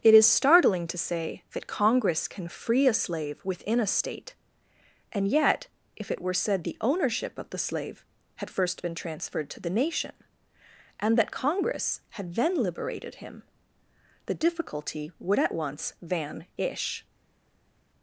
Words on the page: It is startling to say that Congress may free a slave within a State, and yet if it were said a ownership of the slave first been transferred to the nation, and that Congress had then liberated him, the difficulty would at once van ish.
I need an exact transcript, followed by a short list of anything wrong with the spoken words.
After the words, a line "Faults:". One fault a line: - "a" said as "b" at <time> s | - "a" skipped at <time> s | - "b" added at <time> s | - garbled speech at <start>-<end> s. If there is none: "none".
It is startling to say that Congress can free a slave within a State, and yet if it were said the ownership of the slave had first been transferred to the nation, and that Congress had then liberated him, the difficulty would at once van ish.
Faults:
- "may" said as "can" at 2.3 s
- "a" said as "the" at 6.6 s
- "had" added at 8.3 s